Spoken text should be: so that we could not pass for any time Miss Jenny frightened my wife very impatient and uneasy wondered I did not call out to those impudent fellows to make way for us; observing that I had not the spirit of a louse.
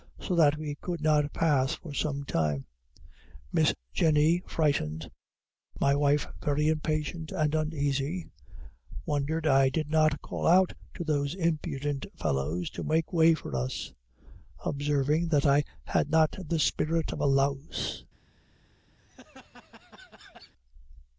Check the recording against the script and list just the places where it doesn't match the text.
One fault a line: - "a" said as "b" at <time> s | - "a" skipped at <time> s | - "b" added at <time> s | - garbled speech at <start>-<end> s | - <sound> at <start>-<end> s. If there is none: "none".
- "any" said as "some" at 1.9 s
- laugh at 19.0-20.5 s